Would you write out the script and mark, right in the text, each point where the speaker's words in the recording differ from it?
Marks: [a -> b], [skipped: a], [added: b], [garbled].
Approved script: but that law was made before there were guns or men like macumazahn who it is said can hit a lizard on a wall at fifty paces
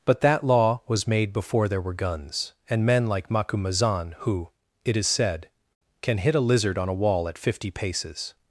but that law was made before there were guns [or -> and] men like macumazahn who it is said can hit a lizard on a wall at fifty paces